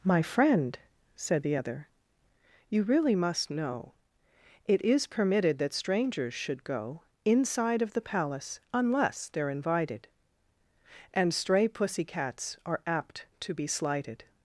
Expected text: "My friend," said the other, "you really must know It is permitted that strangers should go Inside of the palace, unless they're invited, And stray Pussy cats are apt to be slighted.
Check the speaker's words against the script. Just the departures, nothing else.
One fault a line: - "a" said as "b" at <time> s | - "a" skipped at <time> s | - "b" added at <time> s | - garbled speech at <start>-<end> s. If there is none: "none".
none